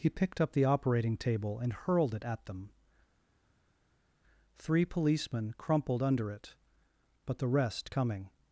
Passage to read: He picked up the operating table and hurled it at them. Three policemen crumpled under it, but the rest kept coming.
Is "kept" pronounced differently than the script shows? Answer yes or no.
yes